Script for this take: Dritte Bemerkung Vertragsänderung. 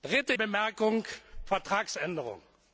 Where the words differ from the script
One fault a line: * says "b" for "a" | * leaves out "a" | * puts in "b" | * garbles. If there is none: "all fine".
all fine